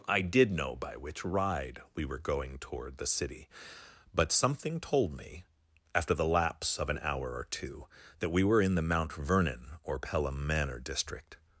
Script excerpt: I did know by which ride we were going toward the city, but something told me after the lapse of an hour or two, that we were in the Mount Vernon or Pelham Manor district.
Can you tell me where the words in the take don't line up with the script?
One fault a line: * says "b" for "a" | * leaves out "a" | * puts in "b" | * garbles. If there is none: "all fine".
all fine